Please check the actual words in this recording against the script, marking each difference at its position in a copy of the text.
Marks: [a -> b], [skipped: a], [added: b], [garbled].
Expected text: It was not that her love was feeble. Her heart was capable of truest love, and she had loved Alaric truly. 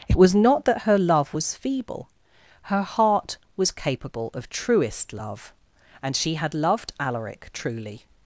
It was not that her love was feeble. Her heart was capable of truest love, and she had loved Alaric truly.